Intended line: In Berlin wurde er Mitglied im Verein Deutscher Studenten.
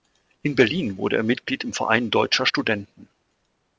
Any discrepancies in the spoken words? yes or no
no